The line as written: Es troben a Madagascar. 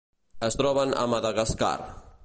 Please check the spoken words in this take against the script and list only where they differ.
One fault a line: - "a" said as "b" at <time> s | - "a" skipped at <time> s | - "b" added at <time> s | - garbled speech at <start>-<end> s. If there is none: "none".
none